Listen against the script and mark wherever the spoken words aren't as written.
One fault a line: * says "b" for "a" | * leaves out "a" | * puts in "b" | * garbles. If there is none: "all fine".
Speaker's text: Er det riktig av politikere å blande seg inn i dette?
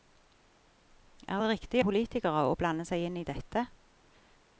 * leaves out "av"